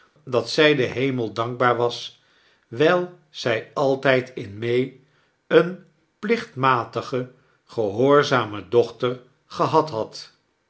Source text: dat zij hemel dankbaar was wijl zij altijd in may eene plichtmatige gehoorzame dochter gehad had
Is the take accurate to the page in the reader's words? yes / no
no